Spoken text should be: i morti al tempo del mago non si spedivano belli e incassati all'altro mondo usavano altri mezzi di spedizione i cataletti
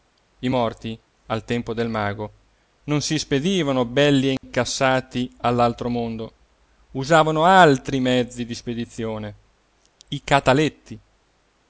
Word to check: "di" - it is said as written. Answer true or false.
true